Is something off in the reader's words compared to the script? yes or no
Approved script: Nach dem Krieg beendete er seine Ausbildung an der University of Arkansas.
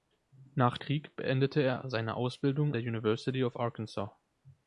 yes